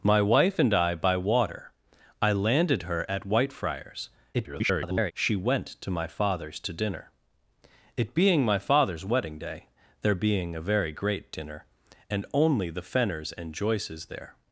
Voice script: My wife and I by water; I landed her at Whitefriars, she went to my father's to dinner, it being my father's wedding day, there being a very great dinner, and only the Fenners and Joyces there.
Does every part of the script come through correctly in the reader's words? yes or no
no